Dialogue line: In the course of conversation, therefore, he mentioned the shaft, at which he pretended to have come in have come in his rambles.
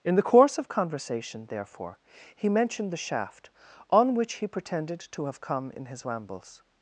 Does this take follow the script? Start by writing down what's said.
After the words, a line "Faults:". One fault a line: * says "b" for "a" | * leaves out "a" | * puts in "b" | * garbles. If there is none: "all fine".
In the course of conversation, therefore, he mentioned the shaft, on which he pretended to have come in his rambles.
Faults:
* says "on" for "at"
* leaves out "have come in"